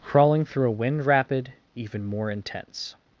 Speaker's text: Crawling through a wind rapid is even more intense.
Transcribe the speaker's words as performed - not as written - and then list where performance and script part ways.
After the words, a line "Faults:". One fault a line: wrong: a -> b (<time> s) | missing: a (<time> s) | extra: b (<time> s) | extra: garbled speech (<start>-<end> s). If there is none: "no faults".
Crawling through a wind rapid even more intense.
Faults:
missing: is (1.5 s)